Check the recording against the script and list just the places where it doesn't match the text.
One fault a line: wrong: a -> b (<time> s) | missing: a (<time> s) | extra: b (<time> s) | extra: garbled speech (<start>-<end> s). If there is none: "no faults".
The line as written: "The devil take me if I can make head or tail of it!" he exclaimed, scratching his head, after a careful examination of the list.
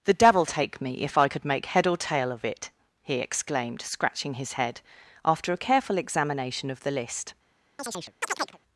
wrong: can -> could (1.3 s)